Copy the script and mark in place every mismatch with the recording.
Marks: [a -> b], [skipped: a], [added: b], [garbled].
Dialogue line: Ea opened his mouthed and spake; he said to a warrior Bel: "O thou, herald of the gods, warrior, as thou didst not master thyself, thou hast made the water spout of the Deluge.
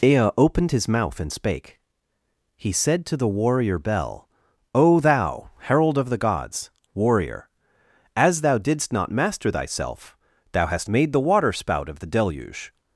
Ea opened his [mouthed -> mouth] and spake; he said to [a -> the] warrior Bel: "O thou, herald of the gods, warrior, as thou didst not master thyself, thou hast made the water spout of the Deluge.